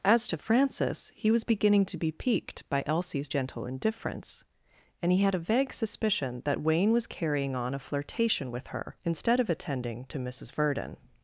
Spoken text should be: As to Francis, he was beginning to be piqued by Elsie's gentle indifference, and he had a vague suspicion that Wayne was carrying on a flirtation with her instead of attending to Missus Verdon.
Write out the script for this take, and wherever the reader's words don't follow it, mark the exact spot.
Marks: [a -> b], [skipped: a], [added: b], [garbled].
As to Francis, he was beginning to be piqued by Elsie's gentle indifference, and he had a vague suspicion that Wayne was carrying on a flirtation with her instead of attending to Missus Verdon.